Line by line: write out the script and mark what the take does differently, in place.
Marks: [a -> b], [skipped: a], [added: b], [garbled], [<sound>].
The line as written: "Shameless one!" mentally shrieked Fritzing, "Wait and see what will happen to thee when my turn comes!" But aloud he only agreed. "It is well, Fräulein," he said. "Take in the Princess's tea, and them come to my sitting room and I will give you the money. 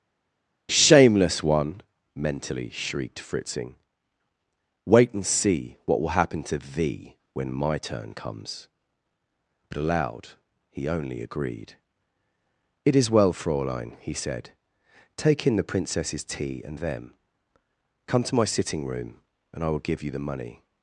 "Shameless one!" mentally shrieked Fritzing, "Wait and see what will happen to thee when my turn comes!" But aloud he only agreed. "It is well, Fräulein," he said. "Take in the Princess's tea, and them come to my sitting room and I will give you the money.